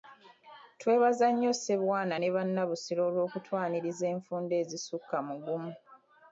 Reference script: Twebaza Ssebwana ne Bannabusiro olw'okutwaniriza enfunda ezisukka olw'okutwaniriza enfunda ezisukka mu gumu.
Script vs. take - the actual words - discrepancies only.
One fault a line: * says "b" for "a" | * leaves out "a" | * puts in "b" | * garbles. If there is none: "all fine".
* puts in "nnyo"
* leaves out "olw'okutwaniriza enfunda ezisukka"